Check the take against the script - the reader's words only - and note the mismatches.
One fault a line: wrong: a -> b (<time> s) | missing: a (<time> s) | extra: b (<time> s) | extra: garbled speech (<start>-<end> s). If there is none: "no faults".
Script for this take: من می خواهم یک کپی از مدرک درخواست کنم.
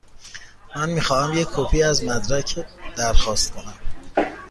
no faults